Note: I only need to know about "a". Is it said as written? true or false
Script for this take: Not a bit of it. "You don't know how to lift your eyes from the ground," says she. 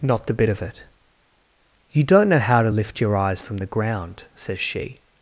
false